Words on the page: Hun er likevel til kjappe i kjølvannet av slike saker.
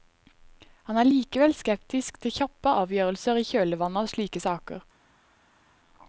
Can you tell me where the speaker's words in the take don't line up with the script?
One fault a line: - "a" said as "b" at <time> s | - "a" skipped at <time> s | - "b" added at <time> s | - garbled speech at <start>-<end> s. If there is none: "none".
- "Hun" said as "Han" at 0.9 s
- "skeptisk" added at 1.6 s
- "avgjørelser" added at 2.8 s